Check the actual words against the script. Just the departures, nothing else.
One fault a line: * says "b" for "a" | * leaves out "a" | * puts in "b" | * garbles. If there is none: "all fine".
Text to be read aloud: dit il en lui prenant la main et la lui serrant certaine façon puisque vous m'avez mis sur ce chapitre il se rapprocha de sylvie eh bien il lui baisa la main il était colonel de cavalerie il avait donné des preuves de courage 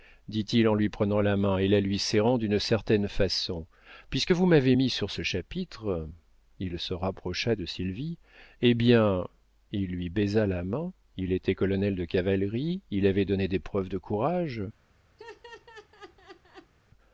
* puts in "d'une"